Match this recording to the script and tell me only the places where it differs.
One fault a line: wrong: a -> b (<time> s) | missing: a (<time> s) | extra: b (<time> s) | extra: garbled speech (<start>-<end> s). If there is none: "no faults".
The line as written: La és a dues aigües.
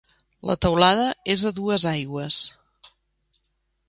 extra: teulada (0.7 s)